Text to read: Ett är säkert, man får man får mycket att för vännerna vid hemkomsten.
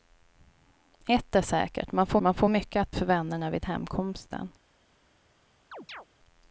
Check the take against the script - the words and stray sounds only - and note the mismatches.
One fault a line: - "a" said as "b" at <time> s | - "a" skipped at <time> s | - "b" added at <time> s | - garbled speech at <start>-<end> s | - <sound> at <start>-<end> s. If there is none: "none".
- chirp at 5.7-6.1 s